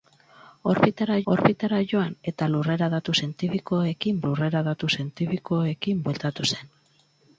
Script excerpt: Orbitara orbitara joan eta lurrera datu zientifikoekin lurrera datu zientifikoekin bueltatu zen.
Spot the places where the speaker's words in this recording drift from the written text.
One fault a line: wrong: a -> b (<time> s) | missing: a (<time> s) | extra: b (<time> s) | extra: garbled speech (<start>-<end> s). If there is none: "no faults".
no faults